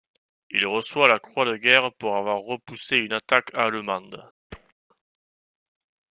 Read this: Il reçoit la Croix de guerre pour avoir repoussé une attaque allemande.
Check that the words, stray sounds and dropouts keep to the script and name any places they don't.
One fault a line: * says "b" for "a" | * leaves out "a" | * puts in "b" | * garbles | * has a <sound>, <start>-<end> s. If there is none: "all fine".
* has a thud, 4.5-4.7 s